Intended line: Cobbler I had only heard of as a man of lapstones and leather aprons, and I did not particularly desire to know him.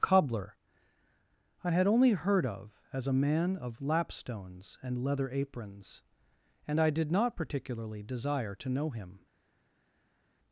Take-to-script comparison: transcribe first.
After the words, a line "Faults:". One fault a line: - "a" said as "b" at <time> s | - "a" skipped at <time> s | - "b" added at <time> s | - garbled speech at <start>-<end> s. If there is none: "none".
Cobbler I had only heard of as a man of lapstones and leather aprons, and I did not particularly desire to know him.
Faults:
none